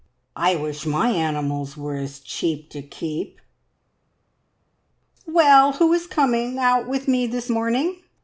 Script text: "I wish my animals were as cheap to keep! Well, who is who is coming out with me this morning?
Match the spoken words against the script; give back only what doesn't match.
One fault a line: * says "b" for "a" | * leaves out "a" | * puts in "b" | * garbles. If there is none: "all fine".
* leaves out "who is"